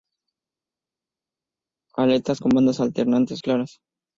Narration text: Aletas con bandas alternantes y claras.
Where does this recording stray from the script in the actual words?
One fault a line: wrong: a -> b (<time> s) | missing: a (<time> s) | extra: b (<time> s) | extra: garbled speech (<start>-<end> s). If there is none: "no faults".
no faults